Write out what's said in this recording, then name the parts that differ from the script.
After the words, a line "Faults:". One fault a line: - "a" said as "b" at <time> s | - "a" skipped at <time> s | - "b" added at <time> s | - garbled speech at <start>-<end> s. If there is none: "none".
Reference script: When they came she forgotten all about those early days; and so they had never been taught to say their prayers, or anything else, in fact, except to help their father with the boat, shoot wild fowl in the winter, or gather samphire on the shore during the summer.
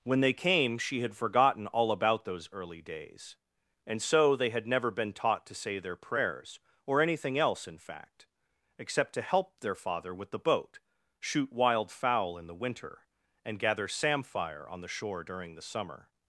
When they came she had forgotten all about those early days; and so they had never been taught to say their prayers, or anything else, in fact, except to help their father with the boat, shoot wild fowl in the winter, and gather samphire on the shore during the summer.
Faults:
- "had" added at 1.0 s
- "or" said as "and" at 13.4 s